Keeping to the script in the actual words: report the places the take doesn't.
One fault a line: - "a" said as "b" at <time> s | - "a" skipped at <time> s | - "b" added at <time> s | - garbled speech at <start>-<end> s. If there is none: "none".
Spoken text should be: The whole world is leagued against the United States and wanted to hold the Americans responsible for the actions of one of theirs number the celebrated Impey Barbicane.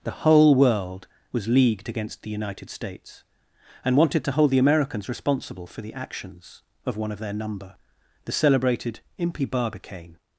- "is" said as "was" at 1.3 s
- "theirs" said as "their" at 7.2 s